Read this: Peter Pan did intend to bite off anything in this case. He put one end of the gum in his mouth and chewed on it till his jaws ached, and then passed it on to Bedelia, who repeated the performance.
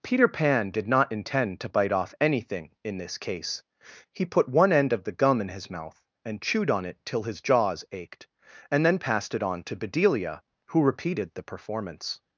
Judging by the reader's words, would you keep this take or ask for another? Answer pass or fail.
fail